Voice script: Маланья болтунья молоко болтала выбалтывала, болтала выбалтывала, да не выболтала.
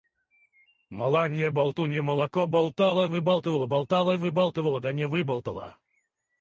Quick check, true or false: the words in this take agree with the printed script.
true